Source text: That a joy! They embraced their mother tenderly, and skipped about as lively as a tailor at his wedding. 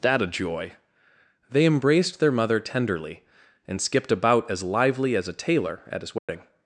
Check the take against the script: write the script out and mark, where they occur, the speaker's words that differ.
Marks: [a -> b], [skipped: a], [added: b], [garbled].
That a joy! They embraced their mother tenderly, and skipped about as lively as a tailor at his wedding.